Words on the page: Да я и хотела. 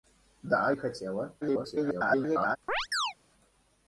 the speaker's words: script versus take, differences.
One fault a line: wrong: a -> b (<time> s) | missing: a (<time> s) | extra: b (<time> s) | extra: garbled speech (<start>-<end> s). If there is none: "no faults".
missing: я (0.7 s)
extra: garbled speech (1.4-2.6 s)